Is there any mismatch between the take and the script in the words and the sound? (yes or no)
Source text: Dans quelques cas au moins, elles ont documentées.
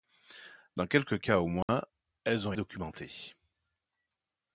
yes